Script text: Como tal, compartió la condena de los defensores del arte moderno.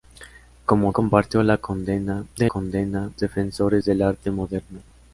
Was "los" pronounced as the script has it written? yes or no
no